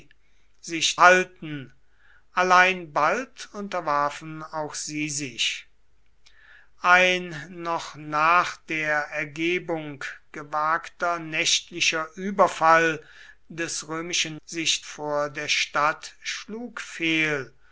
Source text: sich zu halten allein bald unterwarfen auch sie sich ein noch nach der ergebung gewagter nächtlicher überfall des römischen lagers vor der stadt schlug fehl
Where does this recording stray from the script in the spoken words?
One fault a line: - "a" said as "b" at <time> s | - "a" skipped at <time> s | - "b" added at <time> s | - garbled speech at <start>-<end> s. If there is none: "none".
- "zu" skipped at 1.0 s
- "lagers" said as "sich" at 14.4 s